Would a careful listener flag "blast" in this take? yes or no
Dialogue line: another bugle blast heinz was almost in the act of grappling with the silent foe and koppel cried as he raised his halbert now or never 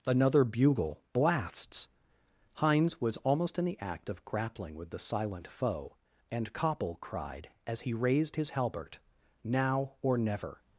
yes